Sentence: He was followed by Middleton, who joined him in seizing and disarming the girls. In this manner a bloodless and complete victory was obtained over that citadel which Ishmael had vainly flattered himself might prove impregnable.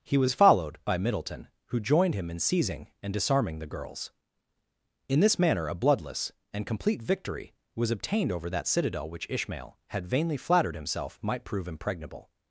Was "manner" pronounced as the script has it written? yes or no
yes